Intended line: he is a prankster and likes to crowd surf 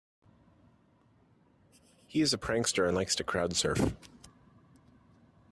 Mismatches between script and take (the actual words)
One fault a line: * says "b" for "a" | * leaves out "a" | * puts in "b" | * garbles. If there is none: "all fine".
all fine